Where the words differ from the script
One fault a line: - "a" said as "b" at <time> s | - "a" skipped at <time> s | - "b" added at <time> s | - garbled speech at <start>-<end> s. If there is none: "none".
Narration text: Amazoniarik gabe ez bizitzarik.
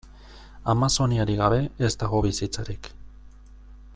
- "dago" added at 2.0 s